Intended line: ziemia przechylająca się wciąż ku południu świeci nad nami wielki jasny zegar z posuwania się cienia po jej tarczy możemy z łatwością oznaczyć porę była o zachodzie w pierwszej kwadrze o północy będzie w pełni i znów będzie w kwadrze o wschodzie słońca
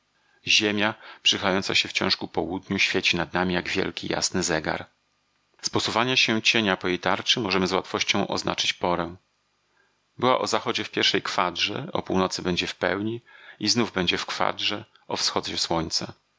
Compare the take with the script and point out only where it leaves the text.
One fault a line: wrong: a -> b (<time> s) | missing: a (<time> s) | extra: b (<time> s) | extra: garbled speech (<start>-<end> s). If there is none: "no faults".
extra: jak (3.5 s)